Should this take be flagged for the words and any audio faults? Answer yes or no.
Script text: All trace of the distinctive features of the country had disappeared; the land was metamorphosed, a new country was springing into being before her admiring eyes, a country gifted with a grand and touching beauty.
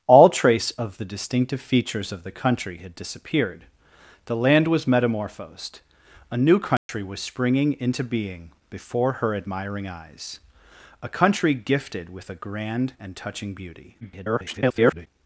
yes